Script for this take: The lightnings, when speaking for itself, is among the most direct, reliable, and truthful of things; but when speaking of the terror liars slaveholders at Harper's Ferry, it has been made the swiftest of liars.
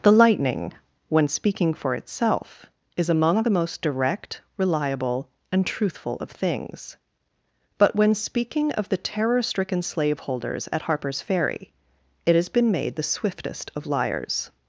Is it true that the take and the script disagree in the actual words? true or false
true